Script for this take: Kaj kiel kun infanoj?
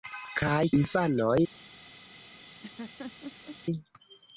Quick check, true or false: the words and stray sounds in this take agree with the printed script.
false